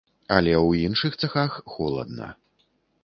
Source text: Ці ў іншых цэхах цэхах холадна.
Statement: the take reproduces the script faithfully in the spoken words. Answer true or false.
false